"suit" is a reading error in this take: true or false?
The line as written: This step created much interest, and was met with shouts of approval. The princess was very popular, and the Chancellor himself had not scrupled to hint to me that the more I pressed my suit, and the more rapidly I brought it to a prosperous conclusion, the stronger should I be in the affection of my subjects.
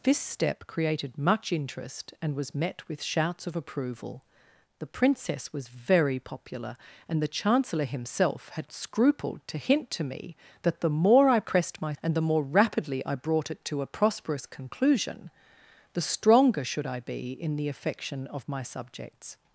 true